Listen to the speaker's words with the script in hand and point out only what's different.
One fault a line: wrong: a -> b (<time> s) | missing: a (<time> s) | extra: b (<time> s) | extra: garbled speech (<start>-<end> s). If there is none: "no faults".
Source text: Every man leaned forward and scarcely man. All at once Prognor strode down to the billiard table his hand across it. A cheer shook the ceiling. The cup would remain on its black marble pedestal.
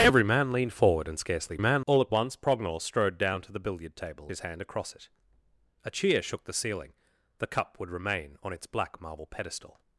no faults